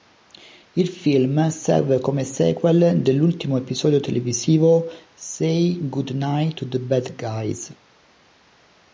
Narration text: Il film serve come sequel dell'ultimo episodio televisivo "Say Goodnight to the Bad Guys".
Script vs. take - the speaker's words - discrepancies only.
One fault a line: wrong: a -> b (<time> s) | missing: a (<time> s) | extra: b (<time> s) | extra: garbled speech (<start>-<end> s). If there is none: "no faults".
no faults